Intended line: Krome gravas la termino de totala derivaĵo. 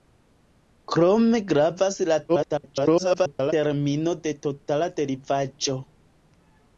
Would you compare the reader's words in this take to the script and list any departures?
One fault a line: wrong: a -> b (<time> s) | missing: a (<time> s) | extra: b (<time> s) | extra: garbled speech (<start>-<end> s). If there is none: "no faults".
extra: garbled speech (2.3-3.5 s)